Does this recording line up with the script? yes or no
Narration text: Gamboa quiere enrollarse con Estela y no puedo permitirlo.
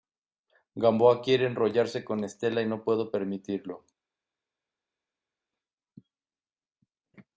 yes